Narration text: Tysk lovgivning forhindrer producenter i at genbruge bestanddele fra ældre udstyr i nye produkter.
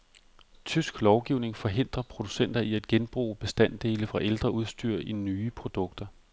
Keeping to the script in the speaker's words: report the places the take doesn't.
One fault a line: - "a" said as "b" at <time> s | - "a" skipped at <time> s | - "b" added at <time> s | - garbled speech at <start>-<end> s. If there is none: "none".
none